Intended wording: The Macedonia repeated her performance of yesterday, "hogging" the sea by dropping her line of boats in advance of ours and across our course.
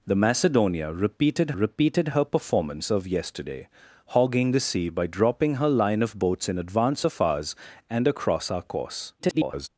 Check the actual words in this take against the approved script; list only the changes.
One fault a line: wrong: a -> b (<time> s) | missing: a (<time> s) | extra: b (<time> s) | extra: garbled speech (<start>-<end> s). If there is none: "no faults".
extra: repeated (1.5 s)
extra: garbled speech (9.2-9.7 s)